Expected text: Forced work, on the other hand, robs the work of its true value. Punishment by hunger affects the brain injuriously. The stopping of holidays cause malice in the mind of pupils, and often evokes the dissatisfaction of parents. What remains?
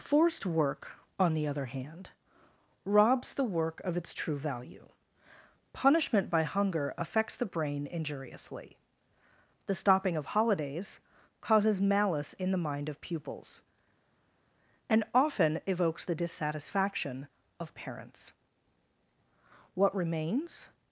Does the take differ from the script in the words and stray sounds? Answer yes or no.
yes